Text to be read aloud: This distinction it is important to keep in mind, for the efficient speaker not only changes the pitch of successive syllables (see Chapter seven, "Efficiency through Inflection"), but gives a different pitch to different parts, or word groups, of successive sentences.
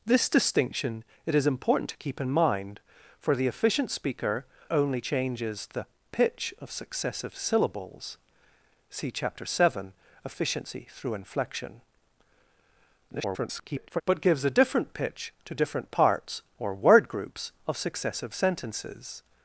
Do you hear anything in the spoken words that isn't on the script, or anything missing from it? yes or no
yes